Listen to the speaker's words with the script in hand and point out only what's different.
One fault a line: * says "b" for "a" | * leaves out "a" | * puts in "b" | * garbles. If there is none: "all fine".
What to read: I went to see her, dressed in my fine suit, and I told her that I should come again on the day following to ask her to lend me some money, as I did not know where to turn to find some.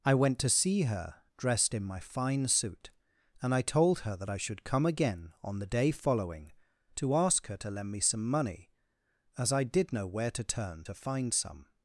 * leaves out "not"